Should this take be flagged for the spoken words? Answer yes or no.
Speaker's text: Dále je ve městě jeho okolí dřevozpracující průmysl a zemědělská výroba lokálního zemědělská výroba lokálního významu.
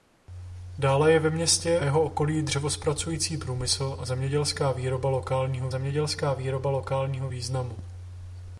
no